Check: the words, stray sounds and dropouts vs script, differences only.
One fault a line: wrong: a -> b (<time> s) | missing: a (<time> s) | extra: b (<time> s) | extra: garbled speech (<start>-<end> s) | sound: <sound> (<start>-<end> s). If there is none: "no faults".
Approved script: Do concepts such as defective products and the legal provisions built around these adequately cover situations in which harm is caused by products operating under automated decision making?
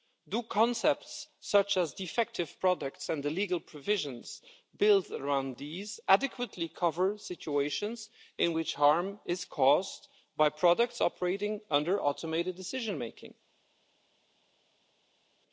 no faults